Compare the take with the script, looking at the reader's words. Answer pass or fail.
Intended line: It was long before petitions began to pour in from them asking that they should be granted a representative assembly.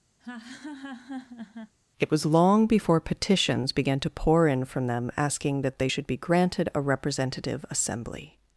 pass